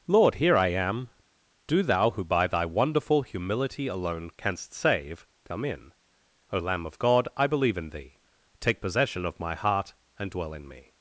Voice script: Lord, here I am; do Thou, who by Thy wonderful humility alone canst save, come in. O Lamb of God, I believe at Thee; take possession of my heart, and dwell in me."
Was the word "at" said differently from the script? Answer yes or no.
yes